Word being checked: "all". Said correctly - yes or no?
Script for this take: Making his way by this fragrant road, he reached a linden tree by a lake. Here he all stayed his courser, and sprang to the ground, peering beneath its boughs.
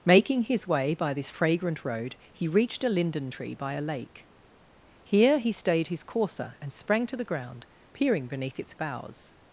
no